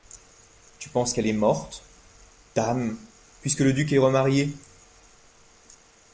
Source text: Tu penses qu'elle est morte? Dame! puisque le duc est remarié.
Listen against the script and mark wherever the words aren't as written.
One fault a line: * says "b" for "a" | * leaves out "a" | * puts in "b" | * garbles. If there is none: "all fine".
all fine